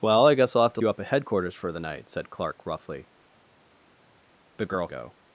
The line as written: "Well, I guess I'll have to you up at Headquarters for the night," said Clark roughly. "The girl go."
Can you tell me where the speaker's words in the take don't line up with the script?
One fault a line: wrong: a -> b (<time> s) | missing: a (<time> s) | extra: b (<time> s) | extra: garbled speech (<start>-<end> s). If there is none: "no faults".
no faults